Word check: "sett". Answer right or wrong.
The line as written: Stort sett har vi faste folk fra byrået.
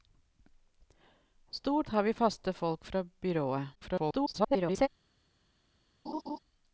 wrong